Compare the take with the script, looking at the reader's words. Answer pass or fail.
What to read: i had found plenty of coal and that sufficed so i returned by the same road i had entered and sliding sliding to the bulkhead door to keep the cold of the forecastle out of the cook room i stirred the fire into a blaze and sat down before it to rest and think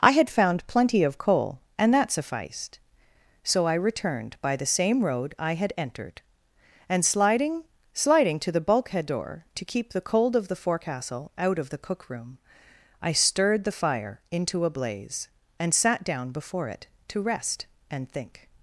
pass